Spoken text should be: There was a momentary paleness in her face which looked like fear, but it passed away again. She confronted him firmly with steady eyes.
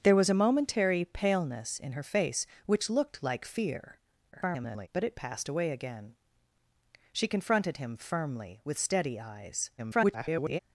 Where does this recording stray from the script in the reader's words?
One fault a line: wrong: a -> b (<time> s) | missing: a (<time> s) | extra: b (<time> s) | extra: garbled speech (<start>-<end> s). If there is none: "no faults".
extra: garbled speech (4.3-4.9 s)
extra: garbled speech (9.8-10.6 s)